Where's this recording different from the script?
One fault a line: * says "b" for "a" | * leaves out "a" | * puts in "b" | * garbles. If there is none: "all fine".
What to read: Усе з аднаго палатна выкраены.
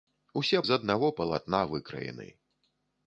all fine